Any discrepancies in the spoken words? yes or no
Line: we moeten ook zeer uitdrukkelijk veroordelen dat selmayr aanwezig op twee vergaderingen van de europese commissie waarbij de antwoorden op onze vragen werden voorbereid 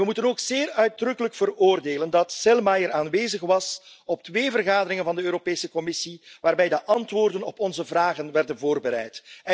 yes